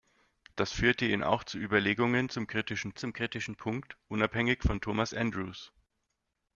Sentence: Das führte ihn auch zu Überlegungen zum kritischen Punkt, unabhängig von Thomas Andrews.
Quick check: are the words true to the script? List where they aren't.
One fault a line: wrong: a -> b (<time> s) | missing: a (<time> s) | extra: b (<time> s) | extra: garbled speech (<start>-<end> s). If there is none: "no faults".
extra: zum kritischen (3.0 s)